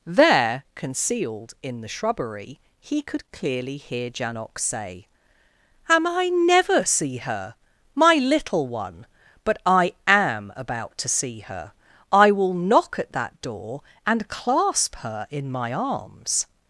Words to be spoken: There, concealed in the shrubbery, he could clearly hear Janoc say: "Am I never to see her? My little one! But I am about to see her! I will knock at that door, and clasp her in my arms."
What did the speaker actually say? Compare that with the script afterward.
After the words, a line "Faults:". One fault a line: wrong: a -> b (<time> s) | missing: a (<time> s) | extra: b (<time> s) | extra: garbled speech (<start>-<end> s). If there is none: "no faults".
There, concealed in the shrubbery, he could clearly hear Janoc say: "Am I never see her? My little one! But I am about to see her! I will knock at that door, and clasp her in my arms."
Faults:
missing: to (6.8 s)